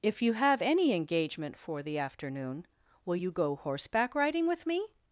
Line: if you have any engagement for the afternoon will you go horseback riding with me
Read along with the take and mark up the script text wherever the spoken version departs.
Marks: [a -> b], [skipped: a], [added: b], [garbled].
if you have any engagement for the afternoon will you go horseback riding with me